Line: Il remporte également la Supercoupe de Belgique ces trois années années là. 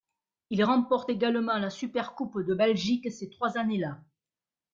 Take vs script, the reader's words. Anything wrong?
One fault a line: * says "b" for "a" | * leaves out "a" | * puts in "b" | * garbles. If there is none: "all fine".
* leaves out "années"